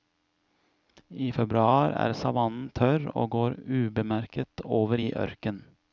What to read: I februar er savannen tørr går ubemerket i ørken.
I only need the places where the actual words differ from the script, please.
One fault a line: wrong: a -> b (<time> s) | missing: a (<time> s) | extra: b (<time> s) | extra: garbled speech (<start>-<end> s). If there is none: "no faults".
extra: og (3.1 s)
extra: over (4.8 s)